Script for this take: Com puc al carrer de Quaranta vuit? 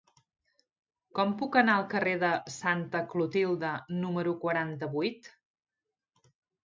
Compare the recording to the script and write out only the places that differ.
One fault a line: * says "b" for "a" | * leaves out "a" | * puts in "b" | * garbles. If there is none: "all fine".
* puts in "anar"
* puts in "Santa Clotilde número"